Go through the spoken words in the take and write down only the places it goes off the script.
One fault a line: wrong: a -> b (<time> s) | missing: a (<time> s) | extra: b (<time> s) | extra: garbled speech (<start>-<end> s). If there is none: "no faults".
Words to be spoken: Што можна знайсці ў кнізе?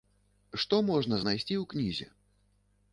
no faults